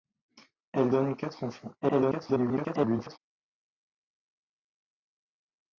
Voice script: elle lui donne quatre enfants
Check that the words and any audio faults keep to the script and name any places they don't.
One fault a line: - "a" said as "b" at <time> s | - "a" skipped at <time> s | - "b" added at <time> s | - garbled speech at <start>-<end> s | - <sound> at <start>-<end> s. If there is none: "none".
- "lui" skipped at 0.9 s
- garbled speech at 1.8-3.2 s